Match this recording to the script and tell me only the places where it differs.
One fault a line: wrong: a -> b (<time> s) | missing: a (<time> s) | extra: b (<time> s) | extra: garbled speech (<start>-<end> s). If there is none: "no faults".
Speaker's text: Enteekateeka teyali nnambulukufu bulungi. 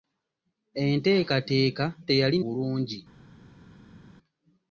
missing: nnambulukufu (2.4 s)